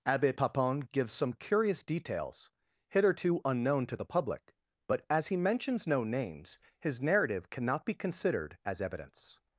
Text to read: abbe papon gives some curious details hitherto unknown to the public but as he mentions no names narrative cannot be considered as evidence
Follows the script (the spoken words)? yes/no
no